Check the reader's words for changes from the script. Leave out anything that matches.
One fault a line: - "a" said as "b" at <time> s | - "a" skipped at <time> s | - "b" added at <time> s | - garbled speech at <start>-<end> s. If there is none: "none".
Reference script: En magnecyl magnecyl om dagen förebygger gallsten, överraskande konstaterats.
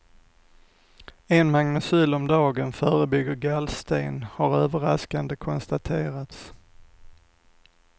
- "magnecyl" skipped at 2.1 s
- "har" added at 4.3 s